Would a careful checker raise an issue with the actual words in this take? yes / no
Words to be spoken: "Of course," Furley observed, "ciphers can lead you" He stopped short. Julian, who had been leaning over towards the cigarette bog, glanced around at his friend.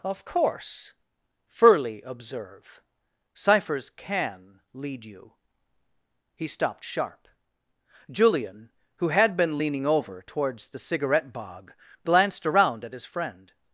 yes